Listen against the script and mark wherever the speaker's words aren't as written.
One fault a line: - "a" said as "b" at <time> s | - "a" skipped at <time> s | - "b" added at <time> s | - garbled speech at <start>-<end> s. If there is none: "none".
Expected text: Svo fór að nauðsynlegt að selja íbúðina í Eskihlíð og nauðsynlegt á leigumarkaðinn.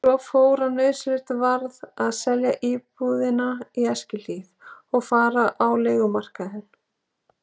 - "varð" added at 1.4 s
- "nauðsynlegt" said as "fara" at 5.1 s